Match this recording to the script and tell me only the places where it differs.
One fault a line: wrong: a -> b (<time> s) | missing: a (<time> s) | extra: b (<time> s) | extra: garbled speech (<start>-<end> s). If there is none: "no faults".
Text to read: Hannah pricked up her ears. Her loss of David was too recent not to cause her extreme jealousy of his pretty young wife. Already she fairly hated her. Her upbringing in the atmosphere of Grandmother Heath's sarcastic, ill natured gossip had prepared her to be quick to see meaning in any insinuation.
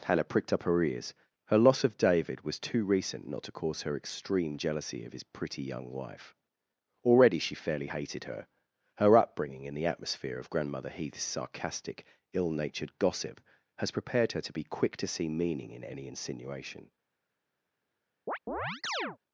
wrong: had -> has (13.8 s)